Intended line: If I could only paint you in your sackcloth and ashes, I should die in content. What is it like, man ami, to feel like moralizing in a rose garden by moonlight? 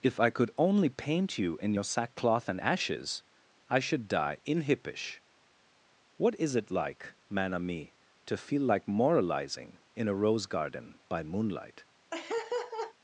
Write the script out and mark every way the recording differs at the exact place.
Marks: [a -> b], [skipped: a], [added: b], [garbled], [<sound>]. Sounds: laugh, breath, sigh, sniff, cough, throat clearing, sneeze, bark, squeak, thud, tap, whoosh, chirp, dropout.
If I could only paint you in your sackcloth and ashes, I should die in [content. -> hippish] What is it like, man ami, to feel like moralizing in a rose garden by moonlight? [laugh]